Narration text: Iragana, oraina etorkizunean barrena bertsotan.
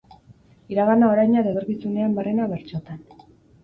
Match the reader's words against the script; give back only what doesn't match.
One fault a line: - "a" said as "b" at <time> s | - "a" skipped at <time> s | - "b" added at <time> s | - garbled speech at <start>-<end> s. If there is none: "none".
- "eta" added at 1.4 s